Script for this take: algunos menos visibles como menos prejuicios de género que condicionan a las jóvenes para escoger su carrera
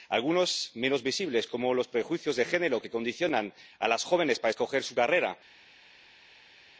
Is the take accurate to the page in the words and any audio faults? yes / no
no